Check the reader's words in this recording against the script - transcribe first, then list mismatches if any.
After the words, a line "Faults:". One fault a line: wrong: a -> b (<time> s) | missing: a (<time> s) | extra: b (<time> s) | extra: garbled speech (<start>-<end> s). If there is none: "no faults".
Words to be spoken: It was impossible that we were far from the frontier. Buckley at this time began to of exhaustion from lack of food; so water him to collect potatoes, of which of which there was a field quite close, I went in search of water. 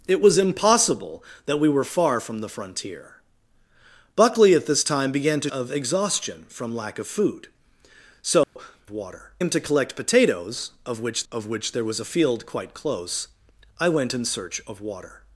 It was impossible that we were far from the frontier. Buckley at this time began to of exhaustion from lack of food; so water him to collect potatoes, of which of which there was a field quite close, I went in search of water.
Faults:
no faults